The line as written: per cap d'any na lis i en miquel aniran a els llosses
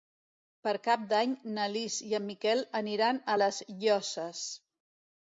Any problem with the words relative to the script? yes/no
yes